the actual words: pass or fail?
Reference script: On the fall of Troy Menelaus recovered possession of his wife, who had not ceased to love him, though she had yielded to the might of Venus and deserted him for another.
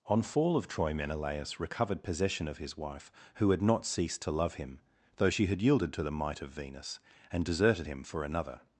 fail